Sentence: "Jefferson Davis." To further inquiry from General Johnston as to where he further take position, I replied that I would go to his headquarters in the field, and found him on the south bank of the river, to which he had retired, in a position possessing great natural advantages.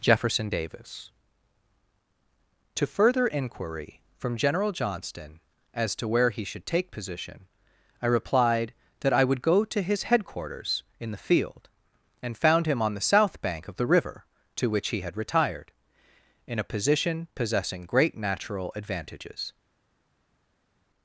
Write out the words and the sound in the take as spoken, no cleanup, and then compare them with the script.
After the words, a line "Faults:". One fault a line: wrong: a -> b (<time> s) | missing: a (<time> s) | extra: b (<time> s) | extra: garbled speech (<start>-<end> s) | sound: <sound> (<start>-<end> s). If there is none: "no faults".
"Jefferson Davis." To further inquiry from General Johnston as to where he should take position, I replied that I would go to his headquarters in the field, and found him on the south bank of the river, to which he had retired, in a position possessing great natural advantages.
Faults:
wrong: further -> should (6.5 s)